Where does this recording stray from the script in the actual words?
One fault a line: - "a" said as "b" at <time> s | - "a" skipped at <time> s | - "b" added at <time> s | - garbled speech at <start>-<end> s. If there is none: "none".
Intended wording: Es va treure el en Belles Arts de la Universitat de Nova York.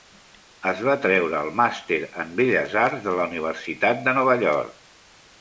- "màster" added at 1.6 s